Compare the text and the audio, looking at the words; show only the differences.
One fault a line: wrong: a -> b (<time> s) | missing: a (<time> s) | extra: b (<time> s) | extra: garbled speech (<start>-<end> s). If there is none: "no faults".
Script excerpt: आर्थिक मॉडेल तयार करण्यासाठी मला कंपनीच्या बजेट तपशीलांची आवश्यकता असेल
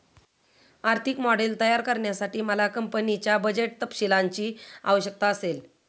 no faults